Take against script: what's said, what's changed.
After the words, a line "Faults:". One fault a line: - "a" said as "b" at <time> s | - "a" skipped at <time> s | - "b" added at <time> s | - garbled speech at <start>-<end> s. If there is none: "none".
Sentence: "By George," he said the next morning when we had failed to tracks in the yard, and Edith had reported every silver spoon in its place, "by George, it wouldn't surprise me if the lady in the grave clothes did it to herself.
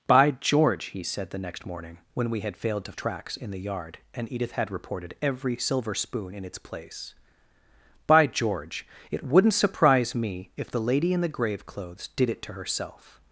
"By George," he said the next morning when we had failed to tracks in the yard, and Edith had reported every silver spoon in its place, "by George, it wouldn't surprise me if the lady in the grave clothes did it to herself.
Faults:
none